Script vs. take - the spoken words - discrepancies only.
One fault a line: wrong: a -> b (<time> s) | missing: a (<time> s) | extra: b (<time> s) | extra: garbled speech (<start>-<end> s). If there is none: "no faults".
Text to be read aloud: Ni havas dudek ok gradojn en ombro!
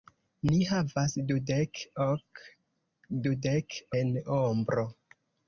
wrong: gradojn -> dudek (3.3 s)